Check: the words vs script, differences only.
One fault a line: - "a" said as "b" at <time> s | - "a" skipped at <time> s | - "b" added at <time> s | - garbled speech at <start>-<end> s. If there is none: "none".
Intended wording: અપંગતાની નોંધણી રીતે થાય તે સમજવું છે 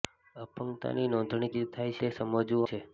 none